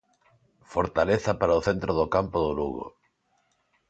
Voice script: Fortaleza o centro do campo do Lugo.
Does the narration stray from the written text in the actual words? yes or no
yes